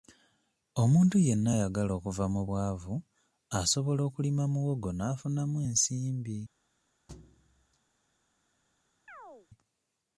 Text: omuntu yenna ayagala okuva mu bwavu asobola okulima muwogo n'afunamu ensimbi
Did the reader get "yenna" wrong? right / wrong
right